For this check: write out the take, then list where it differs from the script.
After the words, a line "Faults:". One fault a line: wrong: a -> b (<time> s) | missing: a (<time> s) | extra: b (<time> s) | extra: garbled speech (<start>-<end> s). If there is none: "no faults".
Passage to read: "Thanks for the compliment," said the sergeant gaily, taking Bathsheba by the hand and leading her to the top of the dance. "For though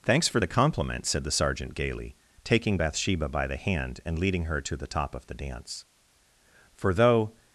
"Thanks for the compliment," said the sergeant gaily, taking Bathsheba by the hand and leading her to the top of the dance. "For though
Faults:
no faults